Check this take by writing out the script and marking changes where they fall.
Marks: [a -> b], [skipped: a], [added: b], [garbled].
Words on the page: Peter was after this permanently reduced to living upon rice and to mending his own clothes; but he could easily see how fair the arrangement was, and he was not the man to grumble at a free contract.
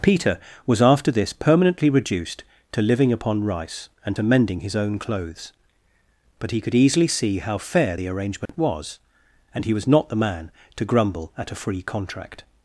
Peter was after this permanently reduced to living upon rice and to mending his own clothes; but he could easily see how fair the arrangement was, and he was not the man to grumble at a free contract.